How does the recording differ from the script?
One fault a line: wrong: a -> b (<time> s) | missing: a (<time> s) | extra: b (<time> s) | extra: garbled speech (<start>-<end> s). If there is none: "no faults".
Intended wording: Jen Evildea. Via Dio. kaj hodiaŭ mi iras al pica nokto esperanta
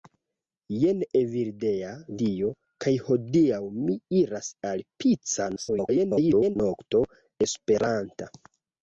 missing: Via (1.9 s)
extra: garbled speech (5.6-6.6 s)